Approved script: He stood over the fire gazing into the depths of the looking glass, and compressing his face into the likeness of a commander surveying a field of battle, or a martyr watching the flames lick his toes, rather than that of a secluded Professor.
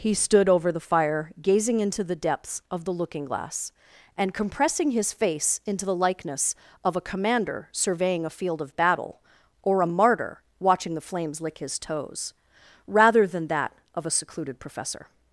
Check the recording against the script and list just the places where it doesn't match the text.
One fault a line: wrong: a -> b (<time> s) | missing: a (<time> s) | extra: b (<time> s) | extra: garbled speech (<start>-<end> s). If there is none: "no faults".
no faults